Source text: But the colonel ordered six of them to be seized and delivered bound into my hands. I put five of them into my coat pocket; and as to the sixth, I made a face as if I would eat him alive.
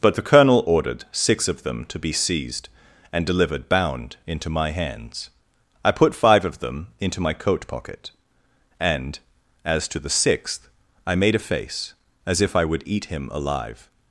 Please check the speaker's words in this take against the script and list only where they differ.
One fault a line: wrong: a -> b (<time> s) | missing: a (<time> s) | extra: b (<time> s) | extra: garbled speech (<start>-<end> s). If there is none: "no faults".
no faults